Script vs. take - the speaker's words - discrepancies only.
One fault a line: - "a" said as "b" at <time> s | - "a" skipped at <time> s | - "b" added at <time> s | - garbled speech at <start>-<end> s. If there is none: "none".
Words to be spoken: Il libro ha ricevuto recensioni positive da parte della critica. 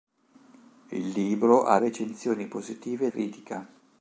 - "ricevuto" skipped at 1.8 s
- "da parte della" skipped at 3.1 s